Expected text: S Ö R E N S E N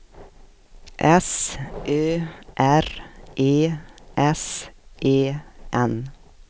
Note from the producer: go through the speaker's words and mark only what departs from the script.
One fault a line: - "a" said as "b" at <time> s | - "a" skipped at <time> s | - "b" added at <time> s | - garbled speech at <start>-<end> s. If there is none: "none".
- "N" skipped at 3.5 s